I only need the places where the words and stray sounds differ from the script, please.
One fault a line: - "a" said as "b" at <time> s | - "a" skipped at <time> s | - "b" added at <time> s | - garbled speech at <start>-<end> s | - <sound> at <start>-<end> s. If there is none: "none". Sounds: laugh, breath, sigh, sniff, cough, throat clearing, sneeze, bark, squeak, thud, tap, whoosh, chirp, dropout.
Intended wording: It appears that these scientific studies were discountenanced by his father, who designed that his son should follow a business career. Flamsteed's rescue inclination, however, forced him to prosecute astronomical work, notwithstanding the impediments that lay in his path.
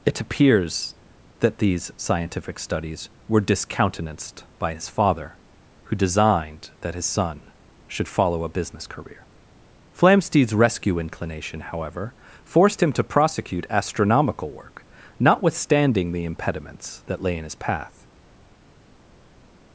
none